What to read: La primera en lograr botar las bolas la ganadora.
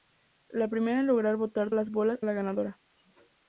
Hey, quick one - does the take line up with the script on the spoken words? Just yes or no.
yes